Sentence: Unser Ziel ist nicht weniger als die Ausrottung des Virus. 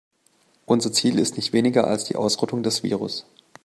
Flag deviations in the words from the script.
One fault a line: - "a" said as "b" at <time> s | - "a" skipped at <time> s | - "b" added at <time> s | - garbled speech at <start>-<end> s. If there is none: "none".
none